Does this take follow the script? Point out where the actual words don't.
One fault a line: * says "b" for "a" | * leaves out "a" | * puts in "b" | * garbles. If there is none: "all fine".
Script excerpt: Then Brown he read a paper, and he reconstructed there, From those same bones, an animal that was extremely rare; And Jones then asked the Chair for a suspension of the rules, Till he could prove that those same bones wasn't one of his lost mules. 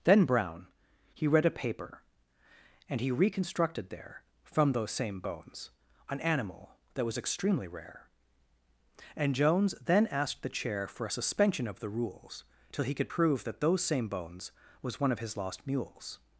* says "was" for "wasn't"